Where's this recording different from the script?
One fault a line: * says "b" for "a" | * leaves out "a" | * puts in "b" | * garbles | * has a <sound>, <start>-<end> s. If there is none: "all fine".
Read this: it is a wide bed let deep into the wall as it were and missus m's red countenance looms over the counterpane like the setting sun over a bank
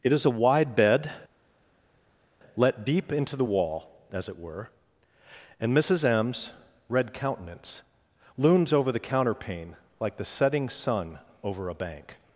all fine